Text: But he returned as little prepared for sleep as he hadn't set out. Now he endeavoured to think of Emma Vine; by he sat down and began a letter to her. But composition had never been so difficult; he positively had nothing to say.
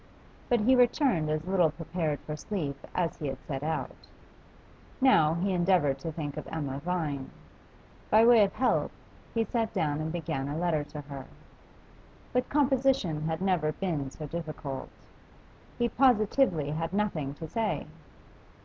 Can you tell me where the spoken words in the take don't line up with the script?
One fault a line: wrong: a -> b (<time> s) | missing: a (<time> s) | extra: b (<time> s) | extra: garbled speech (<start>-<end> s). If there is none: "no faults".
wrong: hadn't -> had (3.3 s)
extra: way of help (8.2 s)